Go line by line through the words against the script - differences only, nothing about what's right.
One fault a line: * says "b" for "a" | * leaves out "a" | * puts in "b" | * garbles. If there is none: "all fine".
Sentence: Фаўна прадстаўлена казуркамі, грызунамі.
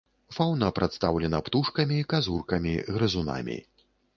* puts in "птушкамі"